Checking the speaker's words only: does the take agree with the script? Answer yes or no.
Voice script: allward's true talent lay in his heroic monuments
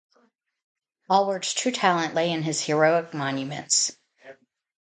yes